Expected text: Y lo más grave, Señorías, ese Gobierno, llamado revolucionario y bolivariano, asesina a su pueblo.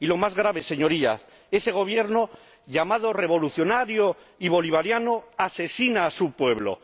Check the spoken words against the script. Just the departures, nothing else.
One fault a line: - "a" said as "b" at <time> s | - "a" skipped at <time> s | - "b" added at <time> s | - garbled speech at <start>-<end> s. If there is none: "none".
none